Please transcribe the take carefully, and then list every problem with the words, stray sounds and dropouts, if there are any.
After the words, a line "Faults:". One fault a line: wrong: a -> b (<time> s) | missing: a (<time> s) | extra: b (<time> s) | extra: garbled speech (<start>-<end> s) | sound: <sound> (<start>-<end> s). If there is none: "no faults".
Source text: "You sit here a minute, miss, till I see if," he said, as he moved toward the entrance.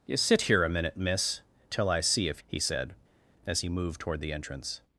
"You sit here a minute, miss, till I see if," he said, as he moved toward the entrance.
Faults:
no faults